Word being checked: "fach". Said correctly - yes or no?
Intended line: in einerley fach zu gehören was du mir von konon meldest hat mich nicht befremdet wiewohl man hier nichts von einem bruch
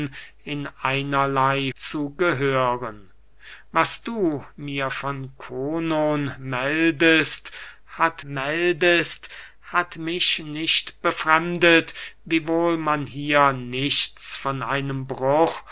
no